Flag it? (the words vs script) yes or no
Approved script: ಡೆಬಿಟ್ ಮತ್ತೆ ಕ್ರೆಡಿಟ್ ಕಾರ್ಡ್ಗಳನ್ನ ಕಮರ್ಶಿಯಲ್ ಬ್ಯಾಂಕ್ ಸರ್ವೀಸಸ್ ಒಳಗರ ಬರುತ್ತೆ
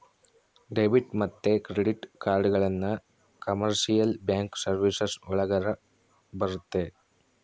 no